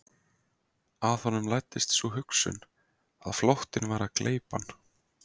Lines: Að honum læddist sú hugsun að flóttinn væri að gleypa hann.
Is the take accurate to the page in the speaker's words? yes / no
yes